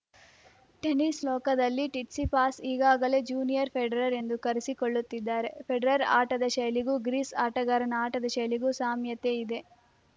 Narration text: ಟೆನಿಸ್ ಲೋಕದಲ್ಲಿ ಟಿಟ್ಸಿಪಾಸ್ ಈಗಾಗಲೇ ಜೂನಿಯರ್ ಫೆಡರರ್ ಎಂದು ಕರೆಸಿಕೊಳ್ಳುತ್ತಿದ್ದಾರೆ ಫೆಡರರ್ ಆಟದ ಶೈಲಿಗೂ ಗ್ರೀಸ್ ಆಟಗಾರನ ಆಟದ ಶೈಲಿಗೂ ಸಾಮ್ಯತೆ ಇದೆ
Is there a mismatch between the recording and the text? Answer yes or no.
no